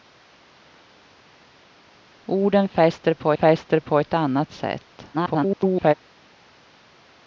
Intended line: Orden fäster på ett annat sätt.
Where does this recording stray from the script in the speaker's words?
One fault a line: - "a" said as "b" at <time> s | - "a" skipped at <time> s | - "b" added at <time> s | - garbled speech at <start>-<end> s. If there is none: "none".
- "fäster på" added at 3.3 s
- garbled speech at 5.1-5.9 s